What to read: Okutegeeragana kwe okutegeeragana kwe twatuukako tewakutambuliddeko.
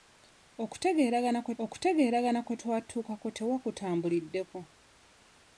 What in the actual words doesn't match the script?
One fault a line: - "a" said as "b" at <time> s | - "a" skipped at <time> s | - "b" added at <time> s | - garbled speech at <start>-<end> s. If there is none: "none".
none